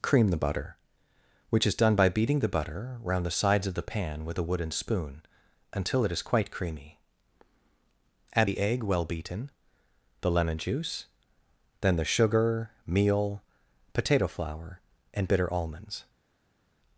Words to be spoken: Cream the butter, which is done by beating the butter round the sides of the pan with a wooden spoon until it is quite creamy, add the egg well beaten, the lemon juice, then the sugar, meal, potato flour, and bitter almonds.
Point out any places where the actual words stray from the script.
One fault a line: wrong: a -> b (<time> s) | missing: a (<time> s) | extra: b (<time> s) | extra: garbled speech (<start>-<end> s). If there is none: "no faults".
no faults